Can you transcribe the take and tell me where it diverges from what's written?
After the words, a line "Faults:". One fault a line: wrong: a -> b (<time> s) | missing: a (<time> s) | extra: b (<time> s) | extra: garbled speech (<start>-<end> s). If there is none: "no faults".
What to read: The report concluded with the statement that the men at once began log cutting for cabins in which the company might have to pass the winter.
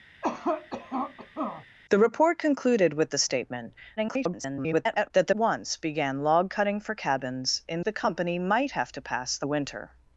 The report concluded with the statement [garbled] that the once began log cutting for cabins in the company might have to pass the winter.
Faults:
extra: garbled speech (4.0-5.1 s)
missing: men at (5.3 s)
missing: which (7.8 s)